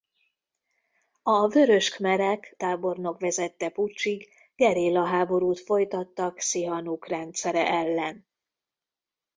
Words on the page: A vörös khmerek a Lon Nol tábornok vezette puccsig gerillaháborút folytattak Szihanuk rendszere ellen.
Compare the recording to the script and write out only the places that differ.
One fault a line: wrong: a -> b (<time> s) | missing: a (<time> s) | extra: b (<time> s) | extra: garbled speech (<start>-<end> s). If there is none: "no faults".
missing: a Lon Nol (2.5 s)